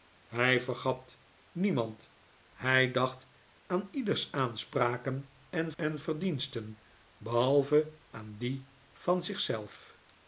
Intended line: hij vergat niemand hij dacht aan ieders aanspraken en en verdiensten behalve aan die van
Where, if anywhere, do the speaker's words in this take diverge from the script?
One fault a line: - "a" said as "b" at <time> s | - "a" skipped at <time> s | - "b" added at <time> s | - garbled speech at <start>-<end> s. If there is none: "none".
none